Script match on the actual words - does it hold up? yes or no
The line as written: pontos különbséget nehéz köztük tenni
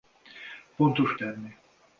no